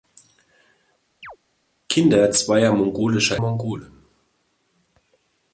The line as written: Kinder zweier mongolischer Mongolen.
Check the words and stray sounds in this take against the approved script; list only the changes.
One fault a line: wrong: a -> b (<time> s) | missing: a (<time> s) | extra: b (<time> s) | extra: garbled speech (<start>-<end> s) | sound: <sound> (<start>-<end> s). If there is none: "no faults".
sound: chirp (1.2-1.4 s)